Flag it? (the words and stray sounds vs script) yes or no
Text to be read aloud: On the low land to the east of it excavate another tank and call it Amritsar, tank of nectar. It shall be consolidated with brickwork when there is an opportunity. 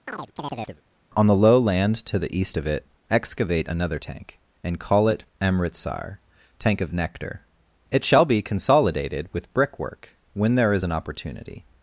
yes